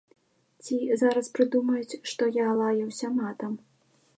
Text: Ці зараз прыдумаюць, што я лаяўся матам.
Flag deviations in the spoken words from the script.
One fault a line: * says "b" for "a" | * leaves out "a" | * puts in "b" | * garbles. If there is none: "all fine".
all fine